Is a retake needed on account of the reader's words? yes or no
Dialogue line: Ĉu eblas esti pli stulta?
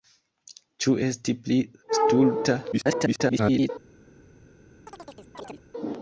yes